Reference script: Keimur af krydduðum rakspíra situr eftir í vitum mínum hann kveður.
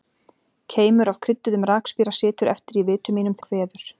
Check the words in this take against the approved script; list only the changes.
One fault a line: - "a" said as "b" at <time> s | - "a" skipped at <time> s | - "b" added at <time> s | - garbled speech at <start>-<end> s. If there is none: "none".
none